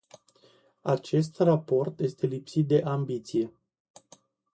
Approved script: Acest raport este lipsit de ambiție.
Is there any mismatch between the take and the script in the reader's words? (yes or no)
no